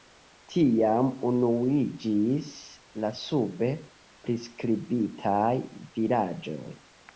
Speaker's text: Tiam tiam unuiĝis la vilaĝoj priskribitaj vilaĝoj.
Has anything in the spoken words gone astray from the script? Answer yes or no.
yes